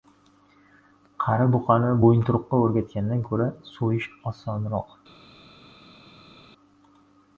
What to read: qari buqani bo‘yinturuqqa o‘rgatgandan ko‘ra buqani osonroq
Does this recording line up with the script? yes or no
no